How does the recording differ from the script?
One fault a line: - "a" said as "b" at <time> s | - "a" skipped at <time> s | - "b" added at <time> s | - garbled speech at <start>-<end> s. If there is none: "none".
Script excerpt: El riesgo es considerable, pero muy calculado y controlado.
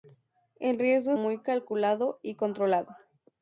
- "es considerable pero" skipped at 1.1 s